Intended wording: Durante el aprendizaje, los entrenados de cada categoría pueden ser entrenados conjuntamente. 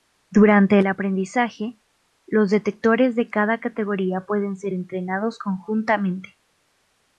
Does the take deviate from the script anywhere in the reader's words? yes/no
yes